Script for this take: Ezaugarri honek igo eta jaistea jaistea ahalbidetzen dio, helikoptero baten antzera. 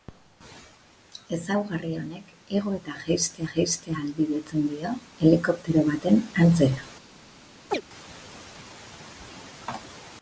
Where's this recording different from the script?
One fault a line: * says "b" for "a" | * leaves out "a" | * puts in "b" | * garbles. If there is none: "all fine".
all fine